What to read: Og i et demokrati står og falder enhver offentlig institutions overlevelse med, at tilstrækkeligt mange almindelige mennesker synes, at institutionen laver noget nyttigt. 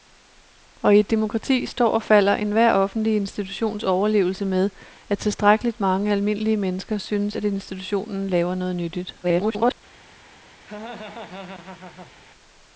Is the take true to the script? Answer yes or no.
no